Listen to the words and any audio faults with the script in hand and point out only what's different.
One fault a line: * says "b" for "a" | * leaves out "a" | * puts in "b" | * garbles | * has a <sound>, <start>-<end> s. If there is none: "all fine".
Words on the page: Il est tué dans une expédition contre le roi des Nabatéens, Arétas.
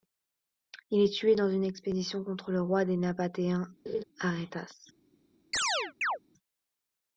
* has a laugh, 3.9-4.0 s
* has a chirp, 5.5-6.2 s